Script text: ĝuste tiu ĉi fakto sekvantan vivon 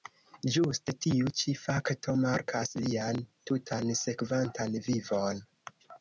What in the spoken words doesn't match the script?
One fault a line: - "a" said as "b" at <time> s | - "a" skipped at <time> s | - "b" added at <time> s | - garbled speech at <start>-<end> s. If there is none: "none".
- "markas lian tutan" added at 2.2 s